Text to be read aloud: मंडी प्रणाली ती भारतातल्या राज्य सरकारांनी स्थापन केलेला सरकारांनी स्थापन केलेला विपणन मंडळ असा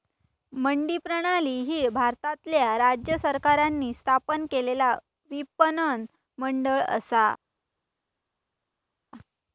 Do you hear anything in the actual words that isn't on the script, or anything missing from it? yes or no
yes